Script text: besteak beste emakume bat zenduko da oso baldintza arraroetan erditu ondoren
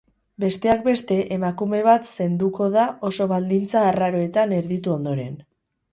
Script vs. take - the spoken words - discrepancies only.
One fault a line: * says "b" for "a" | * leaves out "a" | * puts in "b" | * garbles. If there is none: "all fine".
all fine